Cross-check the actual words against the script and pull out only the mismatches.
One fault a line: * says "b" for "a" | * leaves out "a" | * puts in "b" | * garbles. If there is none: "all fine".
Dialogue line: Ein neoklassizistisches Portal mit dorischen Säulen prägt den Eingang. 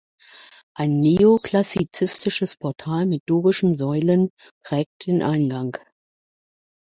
all fine